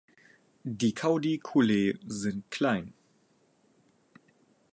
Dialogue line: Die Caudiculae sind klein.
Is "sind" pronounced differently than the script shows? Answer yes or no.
no